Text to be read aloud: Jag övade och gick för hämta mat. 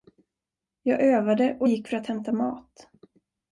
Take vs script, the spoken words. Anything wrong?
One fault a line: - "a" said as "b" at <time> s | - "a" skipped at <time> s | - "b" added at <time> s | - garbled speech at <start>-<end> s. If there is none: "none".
- "att" added at 2.0 s